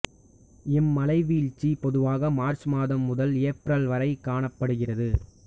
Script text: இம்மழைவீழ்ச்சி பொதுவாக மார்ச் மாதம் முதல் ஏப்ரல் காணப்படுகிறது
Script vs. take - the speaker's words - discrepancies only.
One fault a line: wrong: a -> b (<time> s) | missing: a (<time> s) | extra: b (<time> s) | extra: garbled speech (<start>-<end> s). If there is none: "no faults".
extra: வரை (3.9 s)